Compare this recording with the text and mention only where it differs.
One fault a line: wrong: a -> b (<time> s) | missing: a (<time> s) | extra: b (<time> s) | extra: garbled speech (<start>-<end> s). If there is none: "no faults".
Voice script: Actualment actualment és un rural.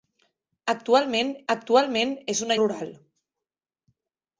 no faults